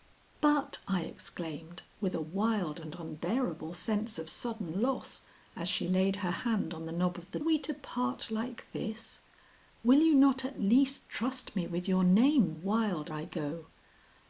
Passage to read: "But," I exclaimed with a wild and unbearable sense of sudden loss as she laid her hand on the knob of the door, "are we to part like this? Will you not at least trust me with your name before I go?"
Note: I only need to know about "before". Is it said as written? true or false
false